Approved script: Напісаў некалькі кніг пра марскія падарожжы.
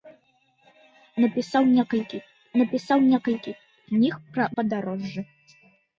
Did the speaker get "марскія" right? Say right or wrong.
wrong